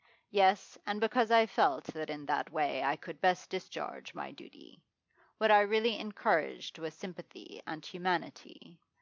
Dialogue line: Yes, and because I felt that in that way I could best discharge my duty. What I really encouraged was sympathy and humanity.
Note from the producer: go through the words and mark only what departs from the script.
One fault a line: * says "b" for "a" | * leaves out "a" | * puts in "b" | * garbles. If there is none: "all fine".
all fine